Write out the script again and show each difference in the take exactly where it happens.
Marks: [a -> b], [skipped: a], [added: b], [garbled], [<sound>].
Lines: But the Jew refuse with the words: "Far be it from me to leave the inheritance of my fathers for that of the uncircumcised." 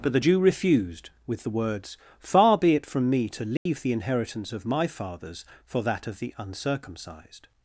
But the Jew [refuse -> refused] with the words: "Far be it from me to leave [dropout] the inheritance of my fathers for that of the uncircumcised."